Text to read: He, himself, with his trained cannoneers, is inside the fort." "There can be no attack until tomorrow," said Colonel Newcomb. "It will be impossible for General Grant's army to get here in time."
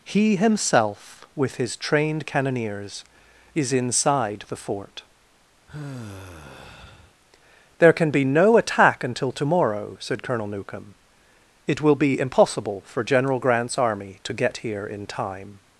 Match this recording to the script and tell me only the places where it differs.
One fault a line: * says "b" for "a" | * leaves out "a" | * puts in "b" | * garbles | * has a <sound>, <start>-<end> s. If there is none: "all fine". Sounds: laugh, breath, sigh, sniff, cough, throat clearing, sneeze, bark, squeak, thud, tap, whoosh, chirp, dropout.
* has a sigh, 5.7-7.1 s